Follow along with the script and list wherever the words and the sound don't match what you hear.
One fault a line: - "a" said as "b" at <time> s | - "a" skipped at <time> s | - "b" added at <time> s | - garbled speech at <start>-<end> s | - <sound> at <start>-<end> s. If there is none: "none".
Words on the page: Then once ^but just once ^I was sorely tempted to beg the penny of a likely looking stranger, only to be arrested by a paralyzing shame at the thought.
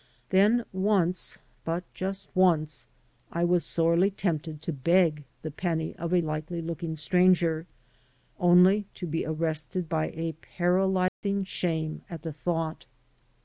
- dropout at 11.1-11.2 s